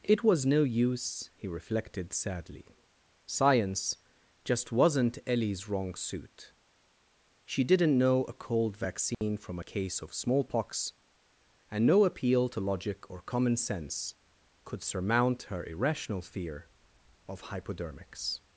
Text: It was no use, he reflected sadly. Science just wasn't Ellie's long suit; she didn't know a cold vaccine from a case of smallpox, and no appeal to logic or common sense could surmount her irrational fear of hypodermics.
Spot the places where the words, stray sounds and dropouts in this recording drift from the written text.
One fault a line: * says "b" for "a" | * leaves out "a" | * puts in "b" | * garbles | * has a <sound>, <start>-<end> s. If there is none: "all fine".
* says "wrong" for "long"
* has a dropout, 9.1-9.2 s